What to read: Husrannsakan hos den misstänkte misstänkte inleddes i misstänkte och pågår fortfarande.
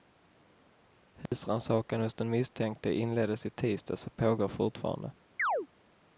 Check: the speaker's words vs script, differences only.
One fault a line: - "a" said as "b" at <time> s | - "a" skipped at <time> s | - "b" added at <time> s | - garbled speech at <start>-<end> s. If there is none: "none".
- "misstänkte" skipped at 2.9 s
- "misstänkte" said as "tisdags" at 3.5 s